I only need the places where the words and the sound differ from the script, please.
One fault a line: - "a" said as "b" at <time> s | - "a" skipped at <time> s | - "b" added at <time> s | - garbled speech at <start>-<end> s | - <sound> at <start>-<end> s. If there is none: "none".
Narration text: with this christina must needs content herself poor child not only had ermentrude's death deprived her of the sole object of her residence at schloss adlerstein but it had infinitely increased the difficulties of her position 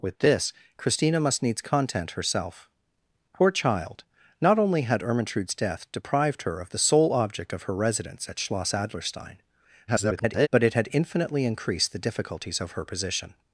- garbled speech at 9.9-10.5 s